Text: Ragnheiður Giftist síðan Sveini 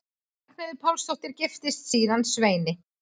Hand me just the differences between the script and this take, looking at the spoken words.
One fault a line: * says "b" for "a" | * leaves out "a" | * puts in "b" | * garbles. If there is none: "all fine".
* puts in "Pálsdóttir"